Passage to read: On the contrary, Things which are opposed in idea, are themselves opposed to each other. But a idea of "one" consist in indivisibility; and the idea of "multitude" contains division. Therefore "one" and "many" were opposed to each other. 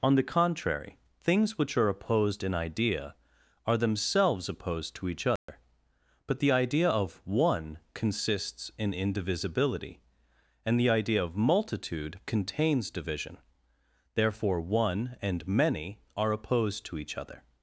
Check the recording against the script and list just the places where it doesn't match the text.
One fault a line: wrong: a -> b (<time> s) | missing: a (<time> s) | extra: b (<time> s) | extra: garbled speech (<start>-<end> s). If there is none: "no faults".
wrong: a -> the (6.4 s)
wrong: consist -> consists (7.9 s)
wrong: were -> are (16.1 s)